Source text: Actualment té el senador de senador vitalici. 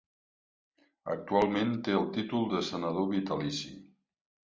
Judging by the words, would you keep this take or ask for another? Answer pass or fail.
fail